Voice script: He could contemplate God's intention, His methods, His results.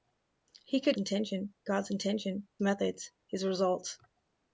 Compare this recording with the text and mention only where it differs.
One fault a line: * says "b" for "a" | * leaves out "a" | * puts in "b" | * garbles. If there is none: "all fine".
* says "intention" for "contemplate"
* leaves out "His"